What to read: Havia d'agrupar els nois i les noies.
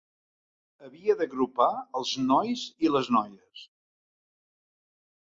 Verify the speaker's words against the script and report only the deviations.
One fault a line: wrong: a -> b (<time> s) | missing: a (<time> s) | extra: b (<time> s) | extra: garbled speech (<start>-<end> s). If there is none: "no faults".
no faults